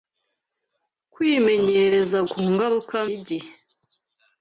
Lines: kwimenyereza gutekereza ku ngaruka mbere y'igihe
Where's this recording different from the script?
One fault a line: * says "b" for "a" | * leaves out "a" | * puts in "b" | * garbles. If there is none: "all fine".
* leaves out "gutekereza"
* leaves out "mbere"